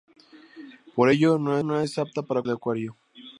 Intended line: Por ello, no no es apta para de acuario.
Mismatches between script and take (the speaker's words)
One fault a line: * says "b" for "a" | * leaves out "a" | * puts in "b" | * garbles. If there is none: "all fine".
all fine